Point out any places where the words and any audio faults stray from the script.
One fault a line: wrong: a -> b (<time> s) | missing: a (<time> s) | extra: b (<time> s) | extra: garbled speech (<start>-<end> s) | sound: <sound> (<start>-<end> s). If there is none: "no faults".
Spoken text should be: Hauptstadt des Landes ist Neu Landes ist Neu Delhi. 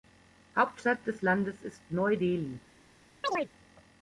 missing: Landes ist Neu (2.2 s)
sound: chirp (3.2-3.5 s)